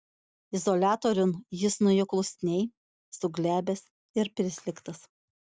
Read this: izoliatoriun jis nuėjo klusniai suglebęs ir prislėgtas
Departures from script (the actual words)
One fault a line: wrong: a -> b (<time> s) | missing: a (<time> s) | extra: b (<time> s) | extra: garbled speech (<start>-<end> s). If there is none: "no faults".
no faults